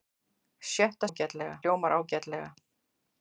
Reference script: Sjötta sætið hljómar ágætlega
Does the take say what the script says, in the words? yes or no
no